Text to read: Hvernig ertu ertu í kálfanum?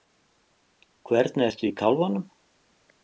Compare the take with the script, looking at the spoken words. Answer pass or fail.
fail